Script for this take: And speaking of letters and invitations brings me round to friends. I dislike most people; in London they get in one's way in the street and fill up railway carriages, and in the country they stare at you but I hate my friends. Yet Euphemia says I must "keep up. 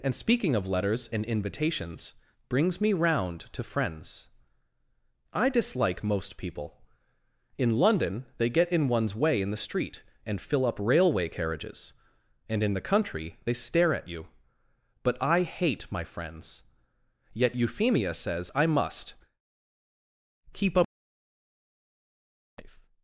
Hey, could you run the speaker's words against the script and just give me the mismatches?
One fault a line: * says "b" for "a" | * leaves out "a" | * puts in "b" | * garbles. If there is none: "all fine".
all fine